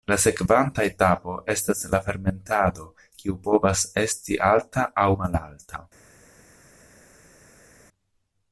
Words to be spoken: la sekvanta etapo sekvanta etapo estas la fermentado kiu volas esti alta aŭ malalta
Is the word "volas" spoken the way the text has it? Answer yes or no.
no